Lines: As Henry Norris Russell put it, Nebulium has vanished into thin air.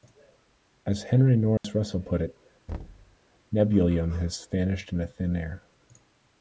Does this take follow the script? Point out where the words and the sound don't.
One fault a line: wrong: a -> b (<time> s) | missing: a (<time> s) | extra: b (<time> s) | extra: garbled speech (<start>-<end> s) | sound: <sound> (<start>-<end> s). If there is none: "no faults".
sound: dropout (1.6-1.6 s)
sound: thud (2.7-3.2 s)